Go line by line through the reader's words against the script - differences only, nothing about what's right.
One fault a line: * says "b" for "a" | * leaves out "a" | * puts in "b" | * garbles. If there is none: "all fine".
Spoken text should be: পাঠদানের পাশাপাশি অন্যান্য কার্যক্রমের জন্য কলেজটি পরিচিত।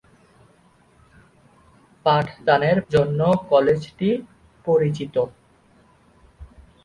* leaves out "পাশাপাশি অন্যান্য কার্যক্রমের"